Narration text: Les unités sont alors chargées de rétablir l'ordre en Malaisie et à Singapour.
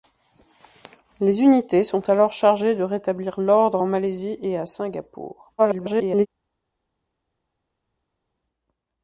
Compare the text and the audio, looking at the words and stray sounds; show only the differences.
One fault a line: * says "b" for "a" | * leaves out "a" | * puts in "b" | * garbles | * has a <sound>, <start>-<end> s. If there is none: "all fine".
* garbles